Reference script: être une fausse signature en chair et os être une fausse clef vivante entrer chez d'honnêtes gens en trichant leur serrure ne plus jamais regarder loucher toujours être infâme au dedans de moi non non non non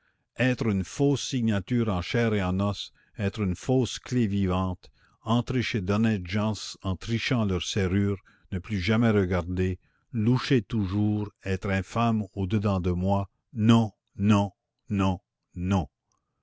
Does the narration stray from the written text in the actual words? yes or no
yes